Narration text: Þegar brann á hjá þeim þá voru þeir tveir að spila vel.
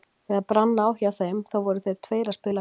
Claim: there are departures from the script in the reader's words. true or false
false